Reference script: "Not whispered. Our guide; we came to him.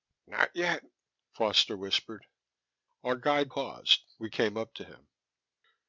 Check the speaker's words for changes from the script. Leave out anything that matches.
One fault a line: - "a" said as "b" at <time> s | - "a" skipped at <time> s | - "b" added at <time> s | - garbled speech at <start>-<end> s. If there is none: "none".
- "yet Foster" added at 0.6 s
- "paused" added at 3.5 s
- "up" added at 4.6 s